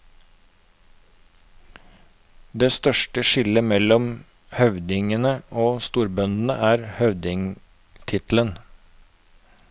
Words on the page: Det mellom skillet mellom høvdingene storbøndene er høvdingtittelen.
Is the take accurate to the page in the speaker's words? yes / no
no